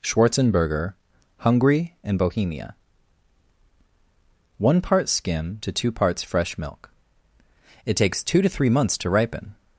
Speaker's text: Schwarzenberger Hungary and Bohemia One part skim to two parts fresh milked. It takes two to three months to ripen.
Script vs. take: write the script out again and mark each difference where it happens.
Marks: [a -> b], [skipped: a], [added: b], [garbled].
Schwarzenberger Hungary and Bohemia One part skim to two parts fresh [milked. -> milk] It takes two to three months to ripen.